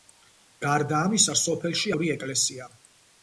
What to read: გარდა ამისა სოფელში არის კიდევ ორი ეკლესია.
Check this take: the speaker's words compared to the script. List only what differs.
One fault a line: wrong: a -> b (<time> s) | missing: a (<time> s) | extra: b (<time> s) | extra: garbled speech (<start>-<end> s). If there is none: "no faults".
missing: არის კიდევ (1.9 s)